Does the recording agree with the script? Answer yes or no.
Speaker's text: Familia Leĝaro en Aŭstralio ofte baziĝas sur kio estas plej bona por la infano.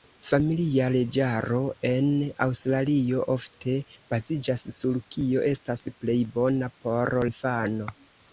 no